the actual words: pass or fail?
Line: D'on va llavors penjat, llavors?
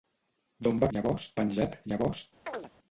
pass